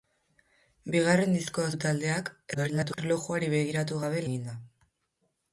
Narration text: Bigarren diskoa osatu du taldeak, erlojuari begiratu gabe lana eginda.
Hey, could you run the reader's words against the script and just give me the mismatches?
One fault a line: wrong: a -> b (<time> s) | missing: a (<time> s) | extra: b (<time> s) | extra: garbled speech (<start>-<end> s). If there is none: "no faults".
missing: osatu (1.7 s)
extra: garbled speech (2.5-3.0 s)
missing: lana (4.3 s)